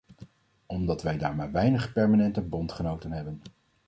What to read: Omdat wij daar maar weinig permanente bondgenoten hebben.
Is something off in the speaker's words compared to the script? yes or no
no